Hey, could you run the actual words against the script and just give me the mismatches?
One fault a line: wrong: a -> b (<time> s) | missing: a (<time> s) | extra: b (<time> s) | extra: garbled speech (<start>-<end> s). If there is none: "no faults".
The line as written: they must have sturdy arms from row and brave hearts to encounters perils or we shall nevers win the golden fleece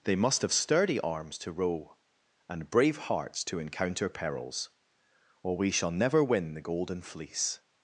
wrong: from -> to (1.4 s)
wrong: encounters -> encounter (3.6 s)
wrong: nevers -> never (5.9 s)